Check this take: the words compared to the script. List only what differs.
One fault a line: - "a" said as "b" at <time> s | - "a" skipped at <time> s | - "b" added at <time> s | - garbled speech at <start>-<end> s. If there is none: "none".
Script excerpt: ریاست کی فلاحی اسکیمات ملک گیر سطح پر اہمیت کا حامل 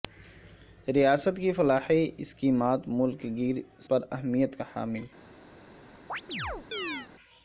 - "سطح" skipped at 3.6 s